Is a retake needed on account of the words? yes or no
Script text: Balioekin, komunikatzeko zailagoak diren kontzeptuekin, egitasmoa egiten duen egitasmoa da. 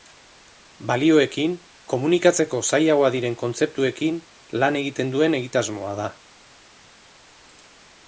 yes